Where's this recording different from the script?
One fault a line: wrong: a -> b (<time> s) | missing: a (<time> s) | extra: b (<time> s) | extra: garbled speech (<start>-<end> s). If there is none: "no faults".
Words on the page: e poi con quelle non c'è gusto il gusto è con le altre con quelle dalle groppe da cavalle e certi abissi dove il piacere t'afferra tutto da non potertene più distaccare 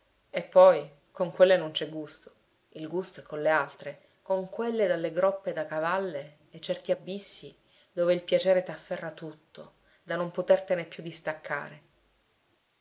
no faults